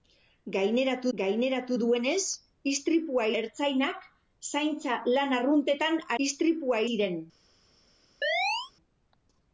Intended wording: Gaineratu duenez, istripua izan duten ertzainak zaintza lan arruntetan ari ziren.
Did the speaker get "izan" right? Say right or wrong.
wrong